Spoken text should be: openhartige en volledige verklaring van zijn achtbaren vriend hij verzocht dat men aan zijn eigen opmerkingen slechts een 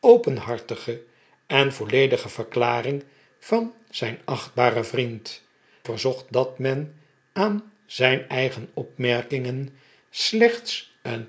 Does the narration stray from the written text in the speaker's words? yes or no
yes